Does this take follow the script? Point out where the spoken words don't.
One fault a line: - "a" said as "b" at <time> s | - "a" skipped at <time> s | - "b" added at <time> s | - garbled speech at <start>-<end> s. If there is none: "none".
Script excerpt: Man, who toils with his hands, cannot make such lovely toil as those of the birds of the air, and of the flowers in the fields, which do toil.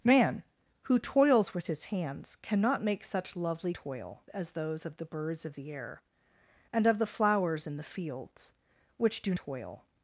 none